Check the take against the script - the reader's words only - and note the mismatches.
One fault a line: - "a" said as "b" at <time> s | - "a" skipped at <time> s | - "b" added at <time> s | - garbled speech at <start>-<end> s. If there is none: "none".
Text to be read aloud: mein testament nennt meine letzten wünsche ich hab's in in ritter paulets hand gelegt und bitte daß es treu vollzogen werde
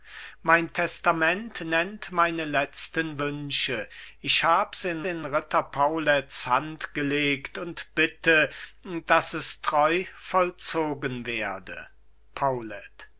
none